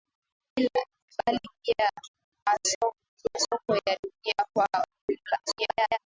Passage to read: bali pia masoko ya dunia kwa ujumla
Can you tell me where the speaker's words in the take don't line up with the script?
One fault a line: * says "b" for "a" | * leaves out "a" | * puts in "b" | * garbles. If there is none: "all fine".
* garbles